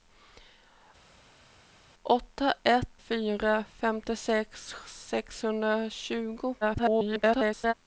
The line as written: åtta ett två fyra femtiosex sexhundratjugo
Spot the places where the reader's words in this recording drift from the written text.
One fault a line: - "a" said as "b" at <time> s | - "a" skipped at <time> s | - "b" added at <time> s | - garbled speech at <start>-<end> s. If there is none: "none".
- "två" skipped at 3.0 s
- garbled speech at 6.6-7.7 s